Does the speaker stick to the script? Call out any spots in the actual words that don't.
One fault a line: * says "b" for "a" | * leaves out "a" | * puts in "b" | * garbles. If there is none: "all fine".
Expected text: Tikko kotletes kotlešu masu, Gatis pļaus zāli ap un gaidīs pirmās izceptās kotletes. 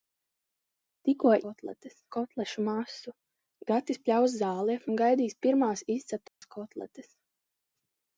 all fine